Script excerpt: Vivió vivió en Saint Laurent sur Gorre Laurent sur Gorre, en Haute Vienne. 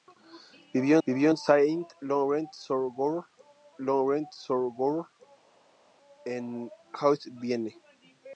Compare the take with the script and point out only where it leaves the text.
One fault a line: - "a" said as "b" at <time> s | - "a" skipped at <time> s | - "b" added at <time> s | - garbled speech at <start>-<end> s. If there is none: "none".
none